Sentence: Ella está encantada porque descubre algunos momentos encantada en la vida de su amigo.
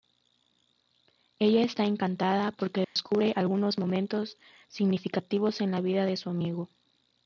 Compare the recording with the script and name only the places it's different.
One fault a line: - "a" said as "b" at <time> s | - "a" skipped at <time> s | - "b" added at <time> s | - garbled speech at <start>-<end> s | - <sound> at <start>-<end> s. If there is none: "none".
- dropout at 2.8-3.0 s
- "encantada" said as "significativos" at 4.7 s